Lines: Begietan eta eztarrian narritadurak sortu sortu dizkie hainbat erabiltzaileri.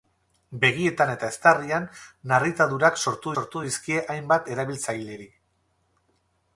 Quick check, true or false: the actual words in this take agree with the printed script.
true